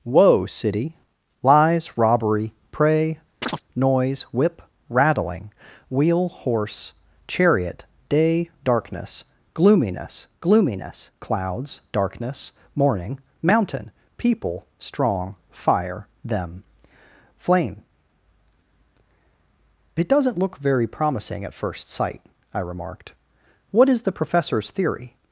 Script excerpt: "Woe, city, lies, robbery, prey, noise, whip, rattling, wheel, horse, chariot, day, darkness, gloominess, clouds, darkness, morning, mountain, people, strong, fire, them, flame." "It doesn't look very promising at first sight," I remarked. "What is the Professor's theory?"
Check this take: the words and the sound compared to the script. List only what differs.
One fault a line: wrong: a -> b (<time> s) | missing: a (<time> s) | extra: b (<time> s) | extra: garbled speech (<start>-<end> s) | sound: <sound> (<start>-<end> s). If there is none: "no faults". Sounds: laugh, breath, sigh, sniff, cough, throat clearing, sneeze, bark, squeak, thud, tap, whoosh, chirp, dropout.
sound: chirp (3.4-3.6 s)
extra: gloominess (10.4 s)